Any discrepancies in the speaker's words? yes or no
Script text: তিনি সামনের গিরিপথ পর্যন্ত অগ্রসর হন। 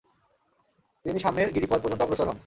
no